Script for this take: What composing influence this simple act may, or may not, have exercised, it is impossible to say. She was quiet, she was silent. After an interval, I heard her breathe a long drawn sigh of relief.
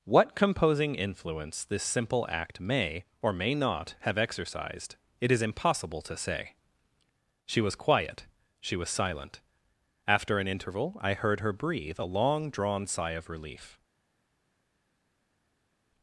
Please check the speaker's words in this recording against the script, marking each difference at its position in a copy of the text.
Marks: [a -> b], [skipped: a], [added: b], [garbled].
What composing influence this simple act may, or may not, have exercised, it is impossible to say. She was quiet, she was silent. After an interval, I heard her breathe a long drawn sigh of relief.